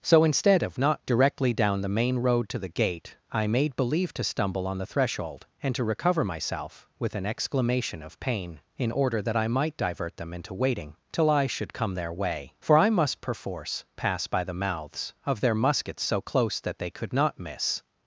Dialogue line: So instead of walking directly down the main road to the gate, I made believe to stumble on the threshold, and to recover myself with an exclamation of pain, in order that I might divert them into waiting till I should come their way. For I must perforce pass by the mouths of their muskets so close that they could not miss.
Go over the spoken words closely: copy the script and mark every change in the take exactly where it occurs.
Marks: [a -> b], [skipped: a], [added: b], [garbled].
So instead of [walking -> not] directly down the main road to the gate, I made believe to stumble on the threshold, and to recover myself with an exclamation of pain, in order that I might divert them into waiting till I should come their way. For I must perforce pass by the mouths of their muskets so close that they could not miss.